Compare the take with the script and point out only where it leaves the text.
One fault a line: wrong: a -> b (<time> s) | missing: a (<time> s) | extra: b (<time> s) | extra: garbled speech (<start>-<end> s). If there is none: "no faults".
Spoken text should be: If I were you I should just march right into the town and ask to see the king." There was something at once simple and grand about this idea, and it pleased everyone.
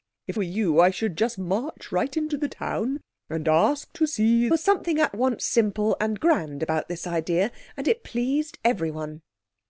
missing: I (0.4 s)
missing: the king There (4.5 s)